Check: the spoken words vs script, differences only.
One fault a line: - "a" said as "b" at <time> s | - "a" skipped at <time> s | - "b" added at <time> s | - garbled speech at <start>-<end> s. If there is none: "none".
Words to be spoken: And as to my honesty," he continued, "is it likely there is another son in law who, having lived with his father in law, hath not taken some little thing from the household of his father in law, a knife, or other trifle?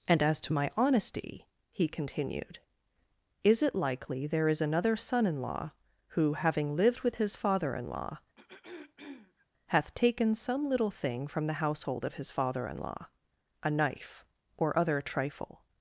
- "not" skipped at 9.9 s